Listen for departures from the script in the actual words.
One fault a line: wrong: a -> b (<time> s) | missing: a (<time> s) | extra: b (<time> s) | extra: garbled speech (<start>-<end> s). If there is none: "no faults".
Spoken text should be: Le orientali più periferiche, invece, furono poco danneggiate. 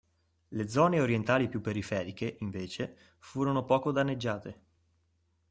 extra: zone (0.7 s)